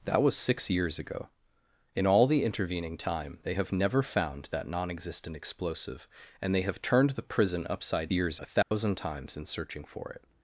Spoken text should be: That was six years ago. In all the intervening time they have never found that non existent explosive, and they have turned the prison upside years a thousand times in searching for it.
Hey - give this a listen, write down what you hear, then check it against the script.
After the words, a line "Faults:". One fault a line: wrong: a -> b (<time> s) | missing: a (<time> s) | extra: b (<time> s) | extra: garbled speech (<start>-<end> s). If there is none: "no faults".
That was six years ago. In all the intervening time they have never found that non existent explosive, and they have turned the prison upside years a thousand times in searching for it.
Faults:
no faults